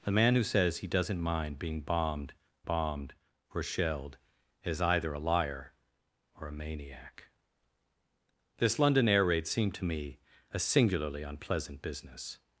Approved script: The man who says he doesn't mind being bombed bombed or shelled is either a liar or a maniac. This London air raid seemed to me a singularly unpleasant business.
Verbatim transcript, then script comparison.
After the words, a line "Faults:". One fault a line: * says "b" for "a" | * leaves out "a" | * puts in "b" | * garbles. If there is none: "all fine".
The man who says he doesn't mind being bombed bombed or shelled is either a liar or a maniac. This London air raid seemed to me a singularly unpleasant business.
Faults:
all fine